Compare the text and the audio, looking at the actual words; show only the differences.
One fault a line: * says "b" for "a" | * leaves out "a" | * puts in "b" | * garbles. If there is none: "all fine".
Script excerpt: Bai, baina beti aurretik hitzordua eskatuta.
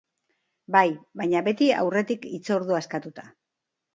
all fine